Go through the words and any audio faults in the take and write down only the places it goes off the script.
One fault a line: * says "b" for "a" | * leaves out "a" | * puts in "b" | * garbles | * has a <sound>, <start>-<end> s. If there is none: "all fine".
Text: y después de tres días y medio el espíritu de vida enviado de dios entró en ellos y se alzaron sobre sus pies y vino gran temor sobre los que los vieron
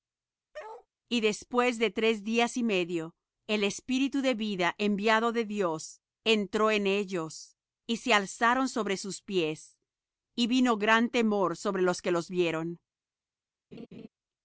* has a bark, 0.5-0.9 s
* has a laugh, 13.7-14.1 s